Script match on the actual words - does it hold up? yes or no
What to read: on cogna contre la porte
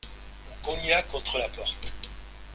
yes